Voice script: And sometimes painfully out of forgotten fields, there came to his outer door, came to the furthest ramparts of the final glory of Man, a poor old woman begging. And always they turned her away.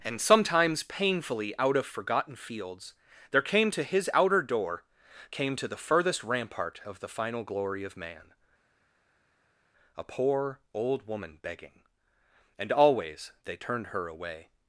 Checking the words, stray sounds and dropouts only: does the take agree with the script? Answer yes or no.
no